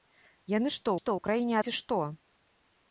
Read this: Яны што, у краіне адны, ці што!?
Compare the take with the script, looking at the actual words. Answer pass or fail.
fail